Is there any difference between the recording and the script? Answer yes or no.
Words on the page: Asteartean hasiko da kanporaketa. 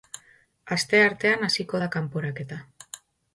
no